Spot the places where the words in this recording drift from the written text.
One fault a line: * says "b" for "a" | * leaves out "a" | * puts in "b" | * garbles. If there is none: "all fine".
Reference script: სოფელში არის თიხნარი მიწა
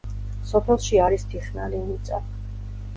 all fine